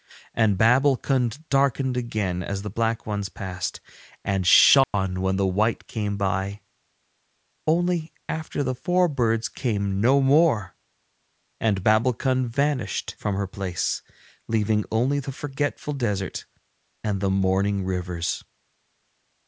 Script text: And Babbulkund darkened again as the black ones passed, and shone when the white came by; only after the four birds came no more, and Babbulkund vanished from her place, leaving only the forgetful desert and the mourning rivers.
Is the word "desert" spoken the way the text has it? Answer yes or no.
yes